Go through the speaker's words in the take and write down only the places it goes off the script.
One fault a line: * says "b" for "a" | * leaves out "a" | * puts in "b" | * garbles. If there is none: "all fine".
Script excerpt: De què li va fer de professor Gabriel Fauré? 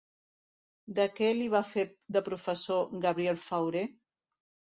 all fine